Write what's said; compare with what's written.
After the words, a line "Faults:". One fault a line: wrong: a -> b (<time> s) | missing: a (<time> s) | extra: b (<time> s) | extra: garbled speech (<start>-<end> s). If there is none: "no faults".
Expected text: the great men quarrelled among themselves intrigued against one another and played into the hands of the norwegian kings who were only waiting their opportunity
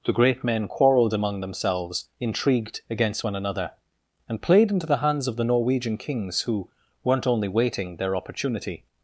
the great men quarrelled among themselves intrigued against one another and played into the hands of the norwegian kings who weren't only waiting their opportunity
Faults:
wrong: were -> weren't (7.0 s)